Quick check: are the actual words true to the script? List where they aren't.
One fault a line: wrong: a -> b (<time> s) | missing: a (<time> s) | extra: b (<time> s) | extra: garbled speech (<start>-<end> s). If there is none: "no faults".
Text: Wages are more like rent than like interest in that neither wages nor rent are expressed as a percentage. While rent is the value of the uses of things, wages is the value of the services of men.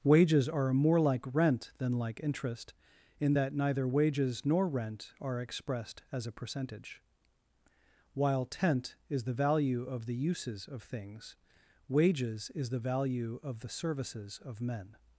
wrong: rent -> tent (8.5 s)